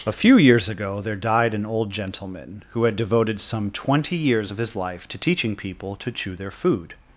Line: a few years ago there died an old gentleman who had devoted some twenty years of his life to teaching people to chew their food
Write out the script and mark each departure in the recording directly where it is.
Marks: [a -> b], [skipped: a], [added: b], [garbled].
a few years ago there died an old gentleman who had devoted some twenty years of his life to teaching people to chew their food